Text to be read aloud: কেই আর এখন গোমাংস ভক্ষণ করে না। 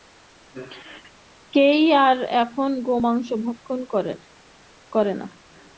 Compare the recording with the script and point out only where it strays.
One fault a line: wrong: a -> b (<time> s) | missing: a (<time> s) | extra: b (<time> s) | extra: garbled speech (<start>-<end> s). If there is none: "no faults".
no faults